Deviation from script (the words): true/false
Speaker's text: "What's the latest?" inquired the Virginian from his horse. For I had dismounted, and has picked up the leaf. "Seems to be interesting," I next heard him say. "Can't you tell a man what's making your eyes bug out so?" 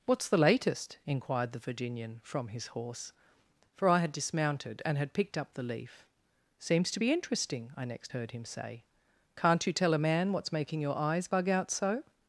true